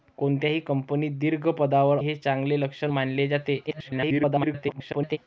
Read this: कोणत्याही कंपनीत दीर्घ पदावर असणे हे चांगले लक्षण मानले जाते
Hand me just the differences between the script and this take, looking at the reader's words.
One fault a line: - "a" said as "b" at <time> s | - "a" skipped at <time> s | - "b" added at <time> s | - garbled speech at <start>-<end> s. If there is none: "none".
- "असणे" skipped at 2.0 s
- garbled speech at 3.7-5.2 s